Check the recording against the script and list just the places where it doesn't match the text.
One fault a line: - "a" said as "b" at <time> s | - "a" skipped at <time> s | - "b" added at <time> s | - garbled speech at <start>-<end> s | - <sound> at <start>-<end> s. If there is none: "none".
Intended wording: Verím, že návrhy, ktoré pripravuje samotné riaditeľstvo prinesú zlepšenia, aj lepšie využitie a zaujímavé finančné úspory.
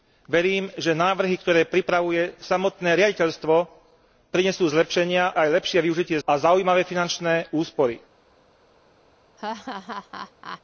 - laugh at 9.4-10.6 s